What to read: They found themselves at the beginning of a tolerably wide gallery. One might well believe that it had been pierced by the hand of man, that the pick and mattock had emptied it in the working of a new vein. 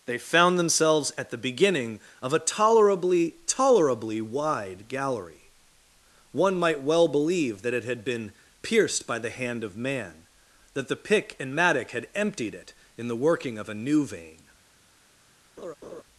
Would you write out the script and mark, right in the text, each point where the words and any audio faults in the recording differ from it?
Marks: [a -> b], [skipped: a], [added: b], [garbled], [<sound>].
They found themselves at the beginning of a tolerably [added: tolerably] wide gallery. One might well believe that it had been pierced by the hand of man, that the pick and mattock had emptied it in the working of a new vein. [laugh]